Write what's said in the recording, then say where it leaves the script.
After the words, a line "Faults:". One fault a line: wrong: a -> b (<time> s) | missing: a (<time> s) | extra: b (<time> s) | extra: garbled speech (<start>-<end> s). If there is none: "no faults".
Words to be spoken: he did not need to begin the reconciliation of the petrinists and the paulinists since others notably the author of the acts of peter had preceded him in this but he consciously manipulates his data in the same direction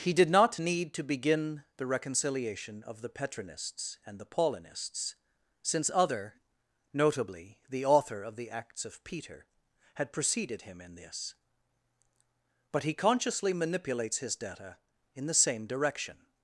he did not need to begin the reconciliation of the petrinists and the paulinists since other notably the author of the acts of peter had preceded him in this but he consciously manipulates his data in the same direction
Faults:
wrong: others -> other (5.9 s)